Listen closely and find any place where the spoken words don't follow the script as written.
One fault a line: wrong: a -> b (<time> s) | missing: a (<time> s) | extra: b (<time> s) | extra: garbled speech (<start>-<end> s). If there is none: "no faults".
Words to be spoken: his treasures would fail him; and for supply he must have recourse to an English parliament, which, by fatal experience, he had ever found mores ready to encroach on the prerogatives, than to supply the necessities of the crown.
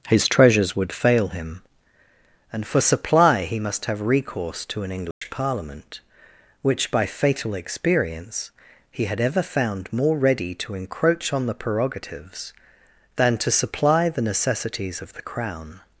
wrong: mores -> more (9.9 s)